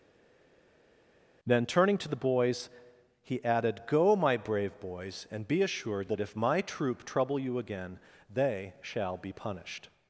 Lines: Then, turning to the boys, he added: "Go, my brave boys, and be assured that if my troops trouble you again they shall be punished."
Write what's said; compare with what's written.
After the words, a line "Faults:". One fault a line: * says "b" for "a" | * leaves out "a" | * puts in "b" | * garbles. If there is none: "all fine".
Then, turning to the boys, he added: "Go, my brave boys, and be assured that if my troop trouble you again they shall be punished."
Faults:
* says "troop" for "troops"